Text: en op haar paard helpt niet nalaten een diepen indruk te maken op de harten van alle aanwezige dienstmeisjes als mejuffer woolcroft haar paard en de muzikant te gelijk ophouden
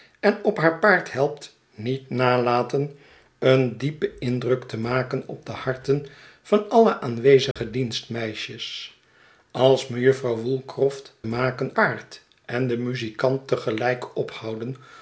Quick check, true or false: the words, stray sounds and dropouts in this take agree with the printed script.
false